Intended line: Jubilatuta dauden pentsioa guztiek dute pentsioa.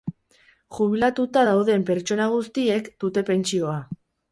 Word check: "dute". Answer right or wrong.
right